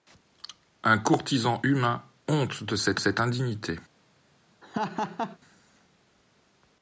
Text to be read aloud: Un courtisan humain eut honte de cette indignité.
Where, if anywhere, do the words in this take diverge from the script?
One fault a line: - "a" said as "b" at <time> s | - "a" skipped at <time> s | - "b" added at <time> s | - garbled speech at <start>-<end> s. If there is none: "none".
- "eut" skipped at 2.0 s
- "cette" added at 3.0 s